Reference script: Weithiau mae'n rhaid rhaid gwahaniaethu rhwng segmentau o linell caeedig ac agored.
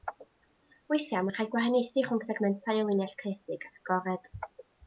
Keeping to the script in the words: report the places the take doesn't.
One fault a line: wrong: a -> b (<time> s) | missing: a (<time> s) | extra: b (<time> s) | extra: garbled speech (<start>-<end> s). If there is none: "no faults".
missing: rhaid (1.5 s)